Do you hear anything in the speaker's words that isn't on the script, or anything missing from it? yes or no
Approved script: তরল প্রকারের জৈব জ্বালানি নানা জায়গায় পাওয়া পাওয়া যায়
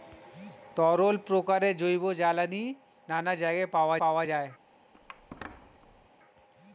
no